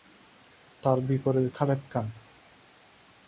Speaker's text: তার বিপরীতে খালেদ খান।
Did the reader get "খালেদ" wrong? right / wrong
right